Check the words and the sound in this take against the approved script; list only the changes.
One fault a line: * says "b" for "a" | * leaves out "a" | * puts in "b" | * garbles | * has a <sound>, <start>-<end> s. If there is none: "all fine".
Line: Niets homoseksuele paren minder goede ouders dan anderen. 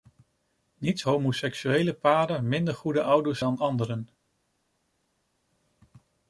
all fine